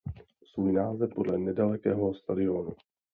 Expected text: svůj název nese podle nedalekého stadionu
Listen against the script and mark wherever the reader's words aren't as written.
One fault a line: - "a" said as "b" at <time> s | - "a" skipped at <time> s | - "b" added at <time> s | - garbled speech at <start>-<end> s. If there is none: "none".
- "nese" skipped at 1.1 s